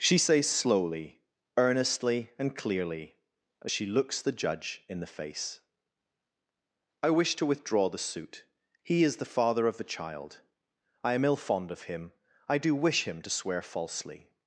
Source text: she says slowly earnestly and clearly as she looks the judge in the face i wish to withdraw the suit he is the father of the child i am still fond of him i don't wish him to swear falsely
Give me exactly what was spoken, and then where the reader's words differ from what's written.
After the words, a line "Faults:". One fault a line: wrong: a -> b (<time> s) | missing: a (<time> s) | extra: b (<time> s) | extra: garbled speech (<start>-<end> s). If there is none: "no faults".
she says slowly earnestly and clearly as she looks the judge in the face i wish to withdraw the suit he is the father of the child i am ill fond of him i do wish him to swear falsely
Faults:
wrong: still -> ill (11.2 s)
wrong: don't -> do (12.6 s)